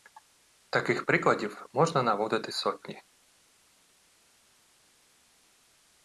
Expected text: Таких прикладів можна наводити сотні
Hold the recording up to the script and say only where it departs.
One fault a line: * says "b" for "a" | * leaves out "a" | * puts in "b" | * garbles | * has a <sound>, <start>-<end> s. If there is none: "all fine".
all fine